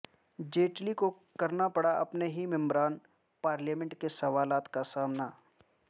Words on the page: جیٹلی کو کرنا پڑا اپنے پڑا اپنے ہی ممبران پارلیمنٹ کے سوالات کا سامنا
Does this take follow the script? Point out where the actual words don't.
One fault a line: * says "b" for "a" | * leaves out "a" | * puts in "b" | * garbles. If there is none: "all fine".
* leaves out "پڑا اپنے"